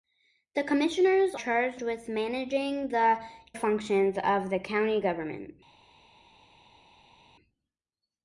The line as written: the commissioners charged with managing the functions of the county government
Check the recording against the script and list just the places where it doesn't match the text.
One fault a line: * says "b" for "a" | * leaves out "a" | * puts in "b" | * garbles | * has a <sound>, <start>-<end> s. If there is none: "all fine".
all fine